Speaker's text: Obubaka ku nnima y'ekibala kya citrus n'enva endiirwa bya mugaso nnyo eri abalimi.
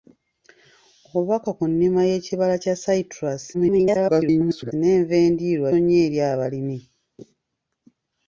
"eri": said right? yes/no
yes